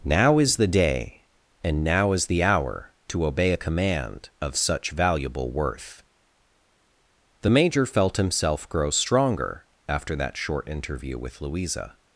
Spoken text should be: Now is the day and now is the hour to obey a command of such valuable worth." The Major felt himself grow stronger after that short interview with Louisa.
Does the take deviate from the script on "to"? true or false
false